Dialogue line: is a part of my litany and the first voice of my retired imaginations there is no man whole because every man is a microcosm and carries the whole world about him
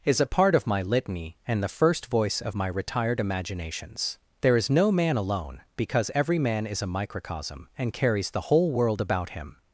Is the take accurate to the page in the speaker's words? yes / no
no